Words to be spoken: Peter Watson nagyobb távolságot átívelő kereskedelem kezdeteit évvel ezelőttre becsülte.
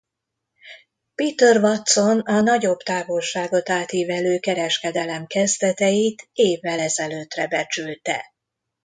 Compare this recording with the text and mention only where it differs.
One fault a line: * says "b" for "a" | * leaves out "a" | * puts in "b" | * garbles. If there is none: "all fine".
* puts in "a"